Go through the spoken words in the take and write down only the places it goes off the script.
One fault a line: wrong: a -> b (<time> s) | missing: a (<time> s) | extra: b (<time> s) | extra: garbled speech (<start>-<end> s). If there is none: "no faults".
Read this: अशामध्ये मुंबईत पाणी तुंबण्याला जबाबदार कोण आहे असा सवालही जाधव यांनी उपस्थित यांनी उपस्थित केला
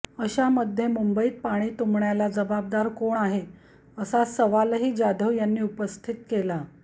missing: यांनी उपस्थित (6.1 s)